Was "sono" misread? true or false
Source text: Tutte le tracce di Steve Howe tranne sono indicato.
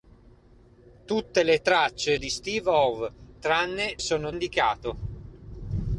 false